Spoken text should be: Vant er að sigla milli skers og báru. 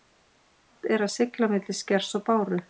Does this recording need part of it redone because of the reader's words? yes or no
no